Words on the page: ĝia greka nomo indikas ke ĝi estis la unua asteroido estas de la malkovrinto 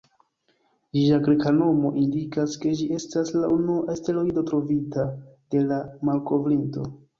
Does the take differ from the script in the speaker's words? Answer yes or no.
yes